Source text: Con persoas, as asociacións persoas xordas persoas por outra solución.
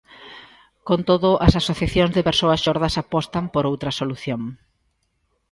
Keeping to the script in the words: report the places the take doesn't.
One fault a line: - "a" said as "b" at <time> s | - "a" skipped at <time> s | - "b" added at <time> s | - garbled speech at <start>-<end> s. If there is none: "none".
- "persoas" said as "todo" at 1.1 s
- "de" added at 2.2 s
- "persoas" said as "apostan" at 3.0 s